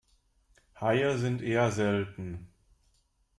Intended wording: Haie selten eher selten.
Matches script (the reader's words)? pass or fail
fail